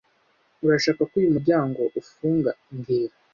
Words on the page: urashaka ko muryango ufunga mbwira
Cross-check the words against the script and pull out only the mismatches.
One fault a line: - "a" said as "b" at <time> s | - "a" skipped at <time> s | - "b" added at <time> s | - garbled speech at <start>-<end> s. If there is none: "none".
- "uyu" added at 1.2 s